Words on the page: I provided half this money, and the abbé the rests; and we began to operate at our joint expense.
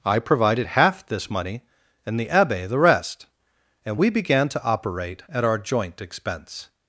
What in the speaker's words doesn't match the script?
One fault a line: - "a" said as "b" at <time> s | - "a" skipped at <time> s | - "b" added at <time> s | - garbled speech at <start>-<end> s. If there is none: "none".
- "rests" said as "rest" at 2.8 s